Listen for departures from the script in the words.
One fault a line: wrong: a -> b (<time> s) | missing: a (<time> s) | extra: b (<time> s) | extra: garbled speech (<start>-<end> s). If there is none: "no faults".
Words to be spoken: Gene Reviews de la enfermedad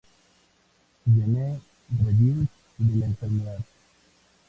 no faults